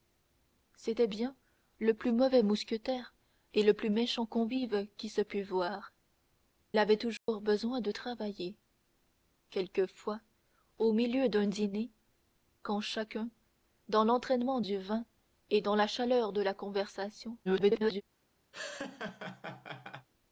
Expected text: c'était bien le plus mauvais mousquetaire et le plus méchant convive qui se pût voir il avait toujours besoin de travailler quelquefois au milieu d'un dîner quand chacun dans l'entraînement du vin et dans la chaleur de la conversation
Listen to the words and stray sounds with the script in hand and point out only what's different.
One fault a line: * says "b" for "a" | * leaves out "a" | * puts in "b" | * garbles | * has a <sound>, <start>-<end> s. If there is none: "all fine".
* leaves out "il"
* has a dropout, 7.2-7.3 s
* garbles
* has a laugh, 18.5-20.1 s